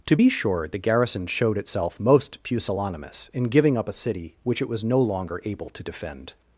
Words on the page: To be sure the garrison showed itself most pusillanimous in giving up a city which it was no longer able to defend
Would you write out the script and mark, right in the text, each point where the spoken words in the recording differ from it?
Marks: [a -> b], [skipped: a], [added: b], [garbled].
To be sure the garrison showed itself most pusillanimous in giving up a city which it was no longer able to defend